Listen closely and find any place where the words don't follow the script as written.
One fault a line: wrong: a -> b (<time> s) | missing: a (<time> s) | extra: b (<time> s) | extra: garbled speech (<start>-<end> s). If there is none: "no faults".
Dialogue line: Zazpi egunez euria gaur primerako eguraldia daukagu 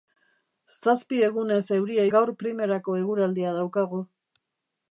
no faults